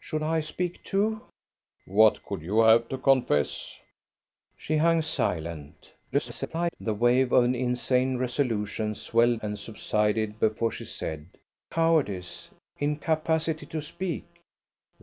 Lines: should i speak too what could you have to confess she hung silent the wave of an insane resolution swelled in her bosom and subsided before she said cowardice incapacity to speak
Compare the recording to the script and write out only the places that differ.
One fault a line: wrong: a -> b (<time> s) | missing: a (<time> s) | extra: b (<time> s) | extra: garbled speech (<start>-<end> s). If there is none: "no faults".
extra: garbled speech (6.1-6.8 s)
missing: in her bosom (9.4 s)